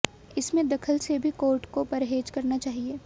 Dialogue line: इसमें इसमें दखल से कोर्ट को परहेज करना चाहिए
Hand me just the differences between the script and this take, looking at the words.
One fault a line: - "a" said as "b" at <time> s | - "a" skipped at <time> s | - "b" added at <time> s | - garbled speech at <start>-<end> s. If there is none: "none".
- "इसमें" skipped at 0.7 s
- "भी" added at 1.2 s